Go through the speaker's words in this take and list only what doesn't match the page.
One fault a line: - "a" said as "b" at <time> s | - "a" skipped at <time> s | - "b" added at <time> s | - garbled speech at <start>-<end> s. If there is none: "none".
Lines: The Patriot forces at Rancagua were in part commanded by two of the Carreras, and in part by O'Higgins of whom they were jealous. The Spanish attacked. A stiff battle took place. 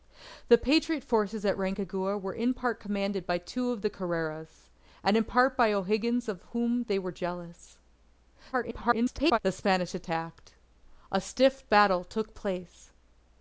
- garbled speech at 8.5-9.4 s